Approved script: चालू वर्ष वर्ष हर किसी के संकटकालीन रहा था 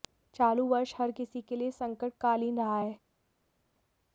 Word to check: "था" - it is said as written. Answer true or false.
false